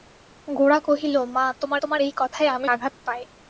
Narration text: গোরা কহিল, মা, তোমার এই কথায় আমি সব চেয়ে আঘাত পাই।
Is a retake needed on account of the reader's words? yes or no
yes